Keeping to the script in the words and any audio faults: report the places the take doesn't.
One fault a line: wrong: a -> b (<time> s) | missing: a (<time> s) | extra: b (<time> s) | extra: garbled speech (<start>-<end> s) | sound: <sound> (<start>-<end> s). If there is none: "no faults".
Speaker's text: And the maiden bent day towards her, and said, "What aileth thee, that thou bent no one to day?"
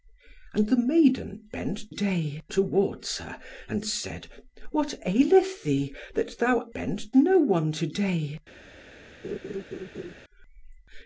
sound: laugh (9.2-10.1 s)